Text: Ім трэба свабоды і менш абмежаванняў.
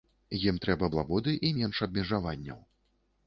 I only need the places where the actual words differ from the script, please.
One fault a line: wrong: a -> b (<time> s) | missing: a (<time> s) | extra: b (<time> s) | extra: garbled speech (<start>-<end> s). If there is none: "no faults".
no faults